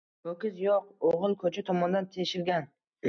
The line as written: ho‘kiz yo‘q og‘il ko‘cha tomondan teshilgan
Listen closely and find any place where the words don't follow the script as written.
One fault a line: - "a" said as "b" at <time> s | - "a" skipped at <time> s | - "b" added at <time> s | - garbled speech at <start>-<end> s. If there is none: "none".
none